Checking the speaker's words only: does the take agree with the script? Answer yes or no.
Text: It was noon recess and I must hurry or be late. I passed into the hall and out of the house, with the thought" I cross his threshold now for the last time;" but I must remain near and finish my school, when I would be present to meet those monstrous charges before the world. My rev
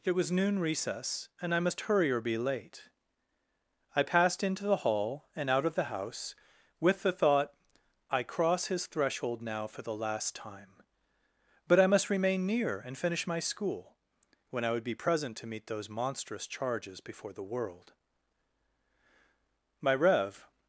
yes